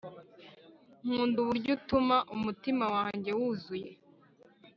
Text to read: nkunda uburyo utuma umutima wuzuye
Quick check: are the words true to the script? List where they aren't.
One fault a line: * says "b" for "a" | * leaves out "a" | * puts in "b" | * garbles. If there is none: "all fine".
* puts in "wanjye"